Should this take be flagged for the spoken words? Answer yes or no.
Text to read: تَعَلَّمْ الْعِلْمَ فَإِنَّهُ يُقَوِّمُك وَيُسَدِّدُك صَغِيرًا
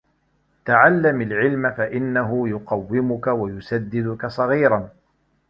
no